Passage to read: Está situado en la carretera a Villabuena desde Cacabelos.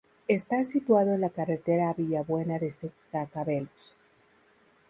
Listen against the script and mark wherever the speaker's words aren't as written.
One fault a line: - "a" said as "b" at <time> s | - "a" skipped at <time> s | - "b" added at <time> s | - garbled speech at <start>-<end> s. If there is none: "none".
none